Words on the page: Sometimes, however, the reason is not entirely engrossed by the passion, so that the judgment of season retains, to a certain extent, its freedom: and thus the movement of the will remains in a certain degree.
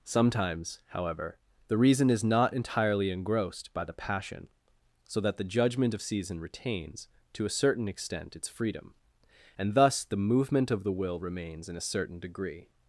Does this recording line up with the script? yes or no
yes